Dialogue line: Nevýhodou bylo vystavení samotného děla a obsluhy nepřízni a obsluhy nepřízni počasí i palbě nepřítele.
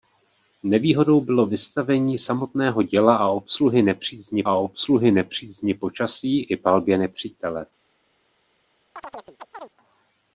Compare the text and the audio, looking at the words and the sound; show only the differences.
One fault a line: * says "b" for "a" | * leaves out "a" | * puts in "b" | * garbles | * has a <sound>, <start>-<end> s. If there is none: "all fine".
* has a chirp, 9.0-9.7 s